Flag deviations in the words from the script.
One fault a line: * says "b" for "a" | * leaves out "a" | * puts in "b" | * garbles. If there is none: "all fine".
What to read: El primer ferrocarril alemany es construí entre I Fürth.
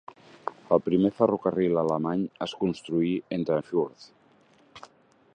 all fine